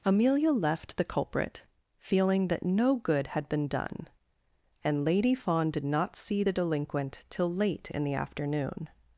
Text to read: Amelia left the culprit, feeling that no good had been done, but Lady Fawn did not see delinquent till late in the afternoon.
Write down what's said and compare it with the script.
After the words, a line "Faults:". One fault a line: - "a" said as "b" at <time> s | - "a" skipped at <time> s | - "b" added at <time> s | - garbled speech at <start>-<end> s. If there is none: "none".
Amelia left the culprit, feeling that no good had been done, and Lady Fawn did not see the delinquent till late in the afternoon.
Faults:
- "but" said as "and" at 4.8 s
- "the" added at 6.4 s